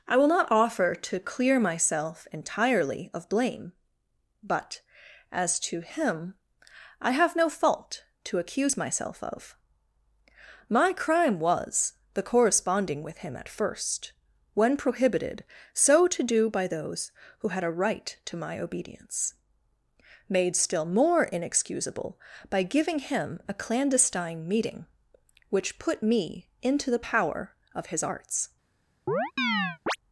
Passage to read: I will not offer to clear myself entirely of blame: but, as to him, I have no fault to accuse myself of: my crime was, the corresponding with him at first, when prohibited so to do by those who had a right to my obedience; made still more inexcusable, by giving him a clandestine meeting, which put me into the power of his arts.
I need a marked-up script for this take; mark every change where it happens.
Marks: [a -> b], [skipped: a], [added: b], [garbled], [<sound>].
I will not offer to clear myself entirely of blame: but, as to him, I have no fault to accuse myself of: my crime was, the corresponding with him at first, when prohibited so to do by those who had a right to my obedience; made still more inexcusable, by giving him a clandestine meeting, which put me into the power of his arts. [chirp]